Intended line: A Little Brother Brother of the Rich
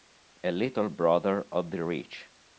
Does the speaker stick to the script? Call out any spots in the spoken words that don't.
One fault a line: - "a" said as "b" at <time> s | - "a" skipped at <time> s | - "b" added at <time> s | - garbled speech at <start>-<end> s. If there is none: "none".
- "Brother" skipped at 1.4 s